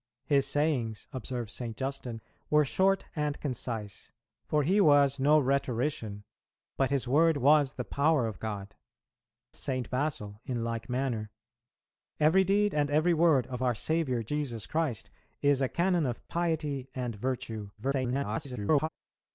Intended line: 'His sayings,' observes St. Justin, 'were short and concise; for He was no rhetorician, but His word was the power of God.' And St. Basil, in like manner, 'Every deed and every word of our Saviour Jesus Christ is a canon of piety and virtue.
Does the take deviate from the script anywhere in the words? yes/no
yes